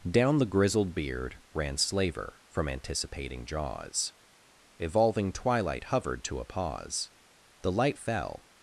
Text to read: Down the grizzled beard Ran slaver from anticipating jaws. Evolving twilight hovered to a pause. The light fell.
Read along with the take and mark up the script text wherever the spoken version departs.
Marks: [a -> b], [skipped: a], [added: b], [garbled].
Down the grizzled beard Ran slaver from anticipating jaws. Evolving twilight hovered to a pause. The light fell.